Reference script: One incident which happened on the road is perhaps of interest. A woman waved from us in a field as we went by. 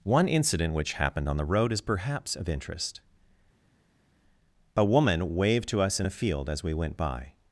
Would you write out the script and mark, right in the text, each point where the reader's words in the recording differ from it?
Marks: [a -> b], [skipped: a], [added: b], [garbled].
One incident which happened on the road is perhaps of interest. A woman waved [from -> to] us in a field as we went by.